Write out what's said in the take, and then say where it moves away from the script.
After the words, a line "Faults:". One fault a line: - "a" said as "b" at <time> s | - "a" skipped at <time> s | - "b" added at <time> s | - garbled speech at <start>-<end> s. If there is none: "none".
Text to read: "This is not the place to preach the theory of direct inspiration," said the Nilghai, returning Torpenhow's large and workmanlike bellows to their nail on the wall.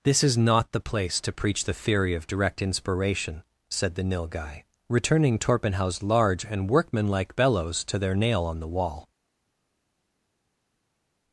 "This is not the place to preach the theory of direct inspiration," said the Nilghai, returning Torpenhow's large and workmanlike bellows to their nail on the wall.
Faults:
none